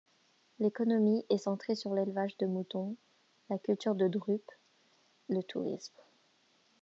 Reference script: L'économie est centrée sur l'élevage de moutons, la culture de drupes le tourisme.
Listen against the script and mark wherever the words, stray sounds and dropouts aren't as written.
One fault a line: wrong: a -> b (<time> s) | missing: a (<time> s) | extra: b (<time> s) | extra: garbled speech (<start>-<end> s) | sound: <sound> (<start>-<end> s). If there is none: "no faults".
no faults